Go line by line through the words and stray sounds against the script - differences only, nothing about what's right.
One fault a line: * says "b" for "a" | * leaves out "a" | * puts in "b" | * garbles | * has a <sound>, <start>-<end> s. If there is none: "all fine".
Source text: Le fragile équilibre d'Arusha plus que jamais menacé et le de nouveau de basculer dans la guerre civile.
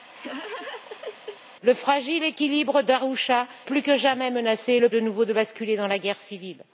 * has a laugh, 0.1-1.4 s